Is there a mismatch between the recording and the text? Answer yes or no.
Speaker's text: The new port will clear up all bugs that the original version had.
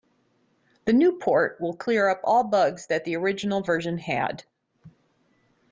no